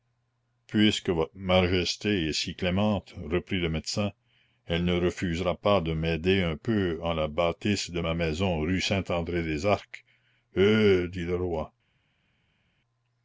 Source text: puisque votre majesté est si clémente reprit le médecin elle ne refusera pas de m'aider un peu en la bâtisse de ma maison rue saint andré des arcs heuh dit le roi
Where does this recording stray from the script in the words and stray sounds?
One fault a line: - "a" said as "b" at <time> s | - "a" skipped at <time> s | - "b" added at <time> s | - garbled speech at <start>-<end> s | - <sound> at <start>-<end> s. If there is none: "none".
none